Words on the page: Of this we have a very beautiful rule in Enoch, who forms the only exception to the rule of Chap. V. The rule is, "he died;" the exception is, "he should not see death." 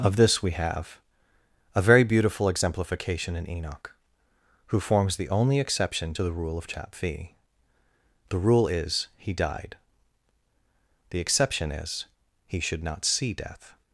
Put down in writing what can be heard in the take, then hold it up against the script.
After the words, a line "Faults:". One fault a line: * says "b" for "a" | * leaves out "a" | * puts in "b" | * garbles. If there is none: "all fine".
Of this we have a very beautiful exemplification in Enoch, who forms the only exception to the rule of Chap. V. The rule is, "he died;" the exception is, "he should not see death."
Faults:
* says "exemplification" for "rule"